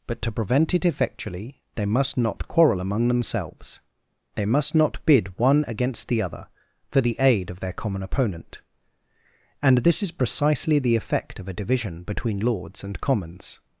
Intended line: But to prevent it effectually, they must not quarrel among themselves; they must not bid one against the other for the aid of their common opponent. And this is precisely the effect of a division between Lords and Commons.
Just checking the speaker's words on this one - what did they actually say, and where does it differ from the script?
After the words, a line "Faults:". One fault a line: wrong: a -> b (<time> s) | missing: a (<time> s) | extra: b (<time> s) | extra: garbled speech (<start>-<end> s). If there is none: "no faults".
But to prevent it effectually, they must not quarrel among themselves; they must not bid one against the other for the aid of their common opponent. And this is precisely the effect of a division between Lords and Commons.
Faults:
no faults